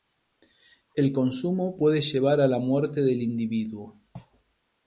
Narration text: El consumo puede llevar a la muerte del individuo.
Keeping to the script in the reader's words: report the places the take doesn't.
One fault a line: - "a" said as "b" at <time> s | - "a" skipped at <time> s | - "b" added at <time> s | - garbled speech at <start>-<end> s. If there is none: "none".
none